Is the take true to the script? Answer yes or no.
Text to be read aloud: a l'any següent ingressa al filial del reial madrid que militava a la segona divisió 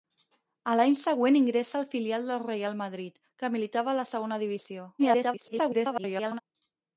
no